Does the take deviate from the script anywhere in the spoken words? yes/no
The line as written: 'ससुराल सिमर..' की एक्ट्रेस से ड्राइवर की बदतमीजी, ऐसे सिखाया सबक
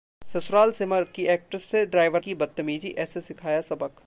no